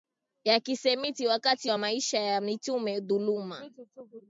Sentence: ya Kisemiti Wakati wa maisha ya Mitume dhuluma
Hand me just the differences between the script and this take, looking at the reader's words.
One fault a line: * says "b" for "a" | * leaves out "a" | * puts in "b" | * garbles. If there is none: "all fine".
all fine